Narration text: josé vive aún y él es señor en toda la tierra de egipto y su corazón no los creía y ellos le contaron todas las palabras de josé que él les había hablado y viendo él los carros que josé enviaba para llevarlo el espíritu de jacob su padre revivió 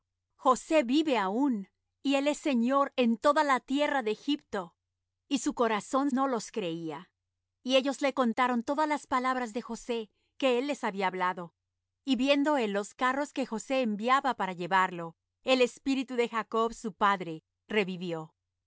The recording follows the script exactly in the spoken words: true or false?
true